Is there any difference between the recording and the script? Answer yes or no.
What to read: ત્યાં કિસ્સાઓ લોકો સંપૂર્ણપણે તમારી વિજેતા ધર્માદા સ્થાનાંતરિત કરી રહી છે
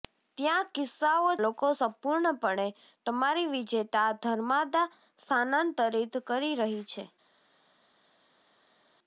no